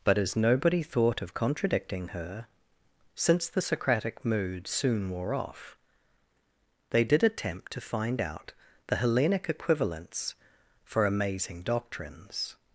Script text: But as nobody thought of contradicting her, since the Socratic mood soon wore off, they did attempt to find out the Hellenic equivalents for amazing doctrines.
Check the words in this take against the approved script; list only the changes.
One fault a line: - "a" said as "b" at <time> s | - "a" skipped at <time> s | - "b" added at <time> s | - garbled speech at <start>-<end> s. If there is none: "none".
none